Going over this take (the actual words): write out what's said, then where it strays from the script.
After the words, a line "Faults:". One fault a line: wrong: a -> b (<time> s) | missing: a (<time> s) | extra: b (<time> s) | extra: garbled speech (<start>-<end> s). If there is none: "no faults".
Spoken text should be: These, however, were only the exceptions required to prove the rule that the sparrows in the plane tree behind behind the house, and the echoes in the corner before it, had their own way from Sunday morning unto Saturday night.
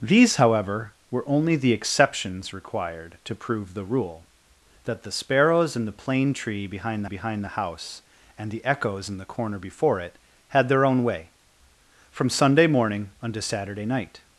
These, however, were only the exceptions required to prove the rule that the sparrows in the plane tree behind behind the house, and the echoes in the corner before it, had their own way from Sunday morning unto Saturday night.
Faults:
no faults